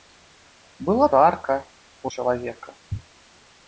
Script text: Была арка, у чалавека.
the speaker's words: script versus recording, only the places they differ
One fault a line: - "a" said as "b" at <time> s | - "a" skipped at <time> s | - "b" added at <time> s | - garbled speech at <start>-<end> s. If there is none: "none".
none